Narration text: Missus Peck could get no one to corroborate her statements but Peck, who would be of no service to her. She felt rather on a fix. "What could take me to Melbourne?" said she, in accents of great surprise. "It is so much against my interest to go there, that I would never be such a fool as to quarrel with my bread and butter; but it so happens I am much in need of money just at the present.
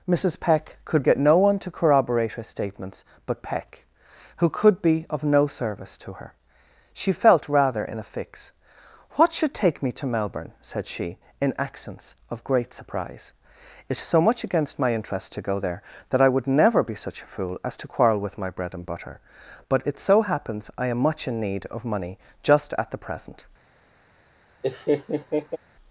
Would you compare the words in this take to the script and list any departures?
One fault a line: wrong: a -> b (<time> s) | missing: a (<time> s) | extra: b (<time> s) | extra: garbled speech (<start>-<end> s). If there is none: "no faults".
wrong: would -> could (4.5 s)
wrong: on -> in (7.8 s)
wrong: could -> should (9.3 s)